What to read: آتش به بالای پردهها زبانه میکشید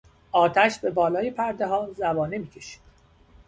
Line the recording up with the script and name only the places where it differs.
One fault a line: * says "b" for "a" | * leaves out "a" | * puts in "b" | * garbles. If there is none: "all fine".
all fine